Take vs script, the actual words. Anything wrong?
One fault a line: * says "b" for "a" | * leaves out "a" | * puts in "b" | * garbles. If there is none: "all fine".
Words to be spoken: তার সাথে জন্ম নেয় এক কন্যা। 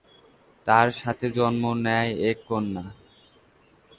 all fine